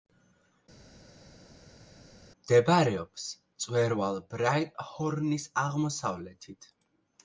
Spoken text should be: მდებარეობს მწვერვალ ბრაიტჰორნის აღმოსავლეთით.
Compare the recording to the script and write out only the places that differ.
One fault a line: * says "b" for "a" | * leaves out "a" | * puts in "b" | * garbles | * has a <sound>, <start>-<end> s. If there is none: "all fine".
all fine